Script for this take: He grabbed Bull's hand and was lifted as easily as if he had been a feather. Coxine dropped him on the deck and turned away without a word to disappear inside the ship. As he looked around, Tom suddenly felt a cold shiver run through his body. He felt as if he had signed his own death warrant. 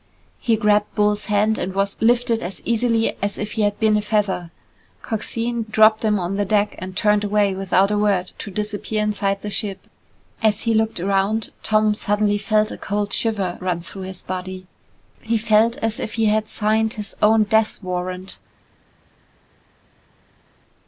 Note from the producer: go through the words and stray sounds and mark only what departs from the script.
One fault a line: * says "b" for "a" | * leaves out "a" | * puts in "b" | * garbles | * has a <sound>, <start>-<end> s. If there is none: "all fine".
all fine